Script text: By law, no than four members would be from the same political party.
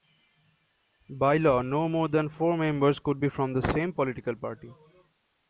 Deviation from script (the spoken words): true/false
true